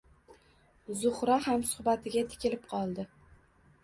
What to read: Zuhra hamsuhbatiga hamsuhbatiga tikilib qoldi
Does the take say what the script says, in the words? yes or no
no